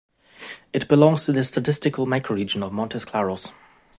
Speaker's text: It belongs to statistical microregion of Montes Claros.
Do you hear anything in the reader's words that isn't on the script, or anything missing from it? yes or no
yes